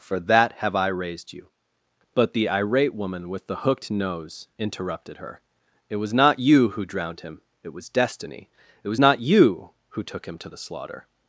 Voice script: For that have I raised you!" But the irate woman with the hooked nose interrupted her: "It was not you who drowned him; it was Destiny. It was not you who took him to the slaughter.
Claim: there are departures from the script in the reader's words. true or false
false